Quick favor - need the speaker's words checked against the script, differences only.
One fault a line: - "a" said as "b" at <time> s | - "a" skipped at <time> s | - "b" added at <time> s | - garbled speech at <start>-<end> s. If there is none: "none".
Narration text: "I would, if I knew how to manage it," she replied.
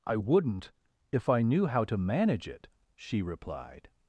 - "would" said as "wouldn't" at 0.2 s